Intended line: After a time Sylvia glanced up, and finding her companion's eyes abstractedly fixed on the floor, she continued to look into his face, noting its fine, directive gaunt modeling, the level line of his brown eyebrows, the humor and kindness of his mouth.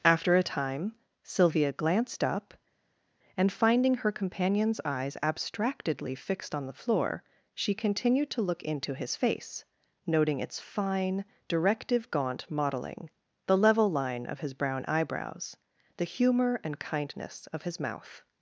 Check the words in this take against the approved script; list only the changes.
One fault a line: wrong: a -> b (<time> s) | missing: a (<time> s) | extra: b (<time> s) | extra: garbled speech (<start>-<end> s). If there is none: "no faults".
no faults